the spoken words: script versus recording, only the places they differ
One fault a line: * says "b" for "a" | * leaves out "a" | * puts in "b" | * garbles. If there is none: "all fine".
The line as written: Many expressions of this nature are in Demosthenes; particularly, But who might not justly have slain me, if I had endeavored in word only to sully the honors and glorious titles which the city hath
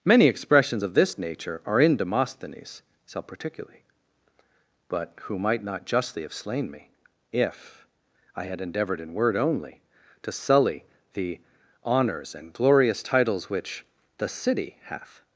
* puts in "self"